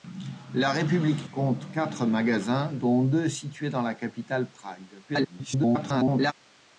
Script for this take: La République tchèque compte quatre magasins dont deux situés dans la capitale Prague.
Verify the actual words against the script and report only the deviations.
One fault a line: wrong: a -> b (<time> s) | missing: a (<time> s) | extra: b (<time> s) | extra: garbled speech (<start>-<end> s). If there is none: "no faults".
missing: tchèque (1.3 s)
extra: garbled speech (5.1-6.3 s)